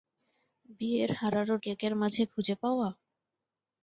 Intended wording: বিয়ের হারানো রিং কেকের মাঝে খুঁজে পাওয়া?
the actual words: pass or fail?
fail